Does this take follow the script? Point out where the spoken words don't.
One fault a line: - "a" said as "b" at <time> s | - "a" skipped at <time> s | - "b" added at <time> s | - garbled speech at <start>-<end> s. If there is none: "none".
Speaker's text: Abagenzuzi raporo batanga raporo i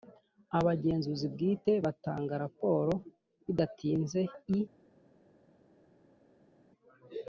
- "raporo" said as "bwite" at 1.3 s
- "bidatinze" added at 3.5 s